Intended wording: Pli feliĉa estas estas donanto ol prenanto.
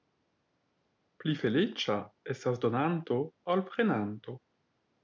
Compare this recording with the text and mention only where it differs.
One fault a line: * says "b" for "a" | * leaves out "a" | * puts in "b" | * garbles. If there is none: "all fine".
* leaves out "estas"